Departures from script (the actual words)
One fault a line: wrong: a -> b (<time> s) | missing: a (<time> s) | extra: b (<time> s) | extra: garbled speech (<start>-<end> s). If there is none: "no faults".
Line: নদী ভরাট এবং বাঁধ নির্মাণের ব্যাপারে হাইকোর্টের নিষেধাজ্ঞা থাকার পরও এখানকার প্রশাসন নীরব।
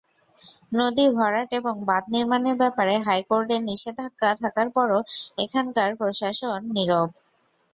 no faults